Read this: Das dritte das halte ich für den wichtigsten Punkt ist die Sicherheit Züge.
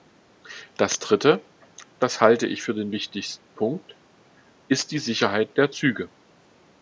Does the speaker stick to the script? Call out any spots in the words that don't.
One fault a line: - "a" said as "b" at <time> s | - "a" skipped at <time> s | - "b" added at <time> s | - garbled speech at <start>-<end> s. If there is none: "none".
- "der" added at 5.6 s